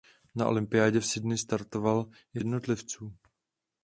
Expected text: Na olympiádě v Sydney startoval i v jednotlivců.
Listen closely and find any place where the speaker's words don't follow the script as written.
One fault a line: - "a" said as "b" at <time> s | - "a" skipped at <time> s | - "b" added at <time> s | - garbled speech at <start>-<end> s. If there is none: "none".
none